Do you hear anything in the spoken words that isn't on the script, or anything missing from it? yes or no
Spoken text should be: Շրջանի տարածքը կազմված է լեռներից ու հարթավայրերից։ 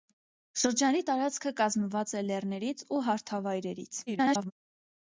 yes